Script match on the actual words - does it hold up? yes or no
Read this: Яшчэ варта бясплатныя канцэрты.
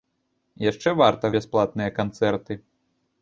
yes